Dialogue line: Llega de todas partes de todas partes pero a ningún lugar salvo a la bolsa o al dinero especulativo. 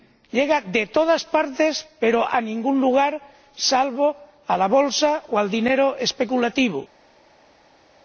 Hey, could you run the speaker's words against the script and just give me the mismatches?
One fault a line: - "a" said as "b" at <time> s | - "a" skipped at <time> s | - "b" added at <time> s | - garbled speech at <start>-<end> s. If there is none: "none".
- "de todas partes" skipped at 1.9 s